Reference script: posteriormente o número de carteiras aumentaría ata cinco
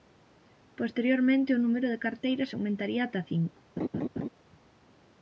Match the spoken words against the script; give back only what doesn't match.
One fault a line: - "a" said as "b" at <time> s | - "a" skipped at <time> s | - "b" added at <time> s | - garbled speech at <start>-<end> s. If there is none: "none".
none